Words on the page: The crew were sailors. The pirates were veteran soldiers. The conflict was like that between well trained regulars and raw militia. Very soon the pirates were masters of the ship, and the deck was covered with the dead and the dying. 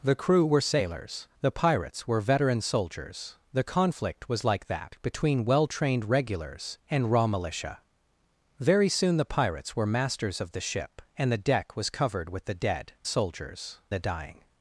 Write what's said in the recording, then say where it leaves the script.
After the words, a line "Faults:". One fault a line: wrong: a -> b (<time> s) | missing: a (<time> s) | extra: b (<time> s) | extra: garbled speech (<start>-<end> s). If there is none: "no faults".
The crew were sailors. The pirates were veteran soldiers. The conflict was like that between well trained regulars and raw militia. Very soon the pirates were masters of the ship, and the deck was covered with the dead soldiers the dying.
Faults:
wrong: and -> soldiers (13.0 s)